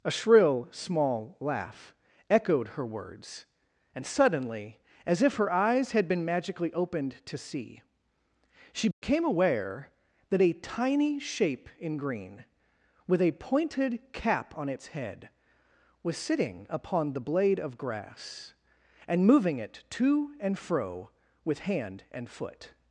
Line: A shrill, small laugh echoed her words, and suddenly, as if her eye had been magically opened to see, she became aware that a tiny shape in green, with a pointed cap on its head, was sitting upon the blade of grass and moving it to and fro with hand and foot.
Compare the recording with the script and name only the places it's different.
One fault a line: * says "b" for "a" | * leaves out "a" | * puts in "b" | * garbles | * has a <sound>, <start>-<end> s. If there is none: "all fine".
* says "eyes" for "eye"
* has a dropout, 8.9-9.0 s